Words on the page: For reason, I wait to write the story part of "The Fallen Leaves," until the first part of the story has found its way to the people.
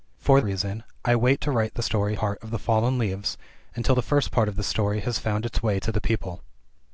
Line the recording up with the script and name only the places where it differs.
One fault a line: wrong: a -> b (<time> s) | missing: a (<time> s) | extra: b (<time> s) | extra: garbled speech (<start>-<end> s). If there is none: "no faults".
no faults